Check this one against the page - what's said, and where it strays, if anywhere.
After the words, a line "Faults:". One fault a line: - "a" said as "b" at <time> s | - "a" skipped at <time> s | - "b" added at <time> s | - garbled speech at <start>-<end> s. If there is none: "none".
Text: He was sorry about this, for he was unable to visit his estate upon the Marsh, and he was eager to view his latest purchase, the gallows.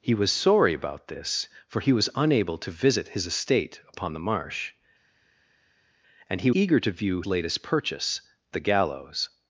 He was sorry about this, for he was unable to visit his estate upon the Marsh, and he eager to view latest purchase, the gallows.
Faults:
- "was" skipped at 6.5 s
- "his" skipped at 7.2 s